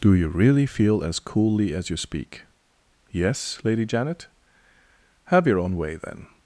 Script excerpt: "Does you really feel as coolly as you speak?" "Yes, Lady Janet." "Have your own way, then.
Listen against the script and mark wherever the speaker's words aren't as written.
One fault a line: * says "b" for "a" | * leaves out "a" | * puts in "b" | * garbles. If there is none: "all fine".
* says "Do" for "Does"